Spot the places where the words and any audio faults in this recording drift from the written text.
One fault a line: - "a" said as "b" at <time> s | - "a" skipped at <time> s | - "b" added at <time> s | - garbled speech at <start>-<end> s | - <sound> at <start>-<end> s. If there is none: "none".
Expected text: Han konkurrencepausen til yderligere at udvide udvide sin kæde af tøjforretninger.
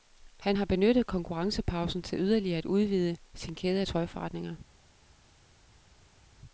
- "har benyttet" added at 0.5 s
- "udvide" skipped at 3.2 s